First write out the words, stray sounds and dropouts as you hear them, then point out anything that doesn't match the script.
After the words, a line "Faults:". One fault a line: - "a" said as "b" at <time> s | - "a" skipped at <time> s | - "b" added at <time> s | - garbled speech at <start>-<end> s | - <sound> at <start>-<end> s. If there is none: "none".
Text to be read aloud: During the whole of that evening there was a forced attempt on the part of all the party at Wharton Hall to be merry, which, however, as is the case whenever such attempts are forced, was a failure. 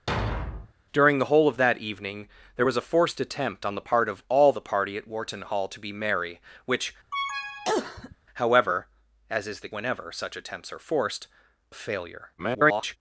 During the whole of that evening there was a forced attempt on the part of all the party at Wharton Hall to be merry, which, however, as is the whenever such attempts are forced, a failure. [garbled]
Faults:
- thud at 0.1-0.7 s
- cough at 7.1-8.2 s
- "case" skipped at 9.7 s
- "was" skipped at 11.3 s
- garbled speech at 12.4-13.0 s